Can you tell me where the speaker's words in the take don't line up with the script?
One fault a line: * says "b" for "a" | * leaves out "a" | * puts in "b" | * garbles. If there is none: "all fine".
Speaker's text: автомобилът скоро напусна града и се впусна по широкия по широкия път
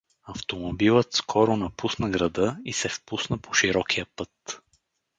* leaves out "по широкия"